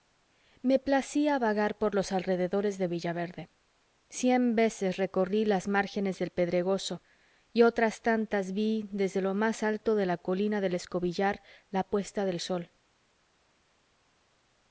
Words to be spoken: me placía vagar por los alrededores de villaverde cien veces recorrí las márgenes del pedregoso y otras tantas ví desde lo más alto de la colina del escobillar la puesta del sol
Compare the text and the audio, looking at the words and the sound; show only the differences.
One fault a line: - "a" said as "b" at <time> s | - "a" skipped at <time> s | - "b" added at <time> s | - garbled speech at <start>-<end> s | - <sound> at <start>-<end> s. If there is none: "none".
none